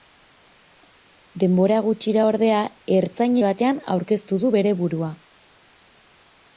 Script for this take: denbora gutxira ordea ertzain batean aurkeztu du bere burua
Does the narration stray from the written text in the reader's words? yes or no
no